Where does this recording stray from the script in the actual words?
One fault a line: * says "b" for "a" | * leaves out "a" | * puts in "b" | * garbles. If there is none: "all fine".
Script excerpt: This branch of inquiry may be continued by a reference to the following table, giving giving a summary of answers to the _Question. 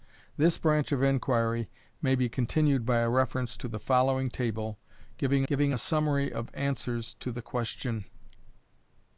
all fine